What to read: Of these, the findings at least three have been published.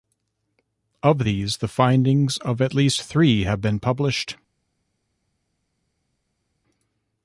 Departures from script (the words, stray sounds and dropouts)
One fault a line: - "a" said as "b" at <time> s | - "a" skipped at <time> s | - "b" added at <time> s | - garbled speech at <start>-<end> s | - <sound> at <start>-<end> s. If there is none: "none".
- "of" added at 2.4 s